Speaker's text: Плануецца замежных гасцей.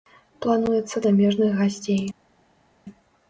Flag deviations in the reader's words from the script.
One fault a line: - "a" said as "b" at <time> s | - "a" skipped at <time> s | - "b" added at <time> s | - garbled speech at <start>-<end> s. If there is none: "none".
none